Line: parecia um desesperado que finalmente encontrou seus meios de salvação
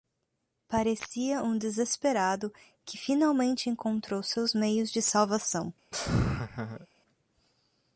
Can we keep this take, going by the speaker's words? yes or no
yes